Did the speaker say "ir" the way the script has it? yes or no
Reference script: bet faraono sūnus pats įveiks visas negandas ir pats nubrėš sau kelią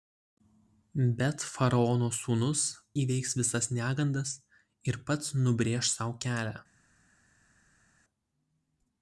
yes